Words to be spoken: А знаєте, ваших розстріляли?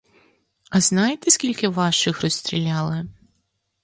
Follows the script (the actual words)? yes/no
no